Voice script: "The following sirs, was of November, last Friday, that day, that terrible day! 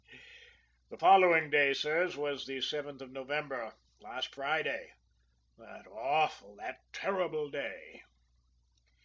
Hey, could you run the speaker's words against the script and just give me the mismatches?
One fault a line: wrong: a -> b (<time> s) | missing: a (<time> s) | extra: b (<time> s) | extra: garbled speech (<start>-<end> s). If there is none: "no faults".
extra: day (1.5 s)
extra: the seventh (2.4 s)
wrong: day -> awful (5.9 s)